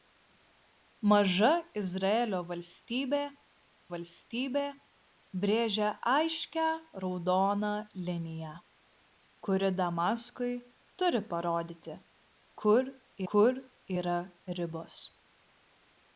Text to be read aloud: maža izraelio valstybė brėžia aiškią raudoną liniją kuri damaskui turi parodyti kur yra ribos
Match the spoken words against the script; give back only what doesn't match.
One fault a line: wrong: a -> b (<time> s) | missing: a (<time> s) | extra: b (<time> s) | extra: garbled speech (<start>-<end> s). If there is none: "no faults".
extra: valstybė (3.9 s)
extra: kur (13.3 s)